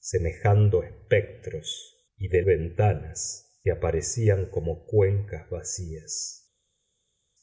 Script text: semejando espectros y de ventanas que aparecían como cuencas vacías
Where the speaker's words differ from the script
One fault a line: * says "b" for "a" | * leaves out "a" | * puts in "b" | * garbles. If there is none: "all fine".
all fine